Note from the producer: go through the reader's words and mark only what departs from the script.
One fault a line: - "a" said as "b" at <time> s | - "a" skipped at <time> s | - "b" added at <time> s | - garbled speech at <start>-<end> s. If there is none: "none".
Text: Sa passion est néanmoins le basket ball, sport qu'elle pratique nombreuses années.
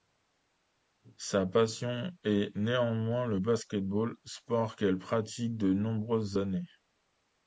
- "de" added at 5.6 s